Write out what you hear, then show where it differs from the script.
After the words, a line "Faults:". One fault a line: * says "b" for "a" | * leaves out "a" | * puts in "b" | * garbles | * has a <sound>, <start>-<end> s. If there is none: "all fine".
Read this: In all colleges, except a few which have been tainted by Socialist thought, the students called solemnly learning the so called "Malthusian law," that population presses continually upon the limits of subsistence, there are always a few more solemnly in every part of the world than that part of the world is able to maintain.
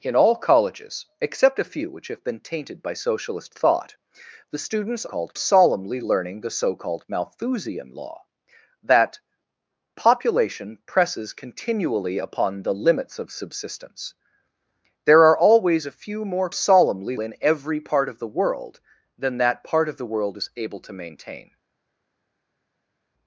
In all colleges, except a few which have been tainted by Socialist thought, the students called solemnly learning the so called "Malthusian law," that population presses continually upon the limits of subsistence, there are always a few more solemnly in every part of the world than that part of the world is able to maintain.
Faults:
all fine